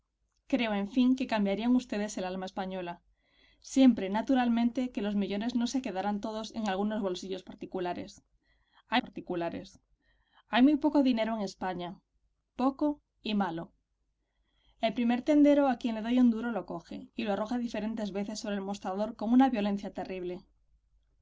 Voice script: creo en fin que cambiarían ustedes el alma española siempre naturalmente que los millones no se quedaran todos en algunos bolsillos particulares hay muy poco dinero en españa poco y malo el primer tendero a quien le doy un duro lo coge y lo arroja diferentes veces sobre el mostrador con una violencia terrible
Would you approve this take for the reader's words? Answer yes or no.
no